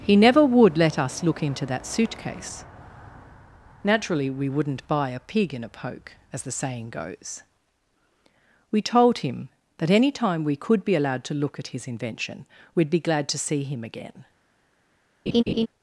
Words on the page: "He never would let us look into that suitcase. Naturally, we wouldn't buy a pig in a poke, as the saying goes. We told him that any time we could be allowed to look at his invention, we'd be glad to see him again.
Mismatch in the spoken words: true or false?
false